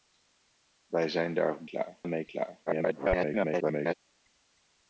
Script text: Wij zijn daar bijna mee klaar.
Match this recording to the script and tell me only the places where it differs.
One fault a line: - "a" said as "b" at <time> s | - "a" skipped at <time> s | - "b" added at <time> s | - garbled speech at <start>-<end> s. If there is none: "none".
- "bijna" said as "klaar" at 1.6 s
- garbled speech at 2.7-3.9 s